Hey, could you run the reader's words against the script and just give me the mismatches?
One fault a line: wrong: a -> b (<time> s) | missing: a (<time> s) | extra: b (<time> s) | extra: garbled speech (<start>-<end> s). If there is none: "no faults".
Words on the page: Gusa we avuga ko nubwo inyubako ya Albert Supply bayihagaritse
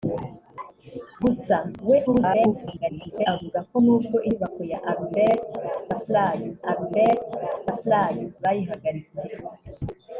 extra: garbled speech (2.1-3.3 s)
extra: Albert Supply (6.7 s)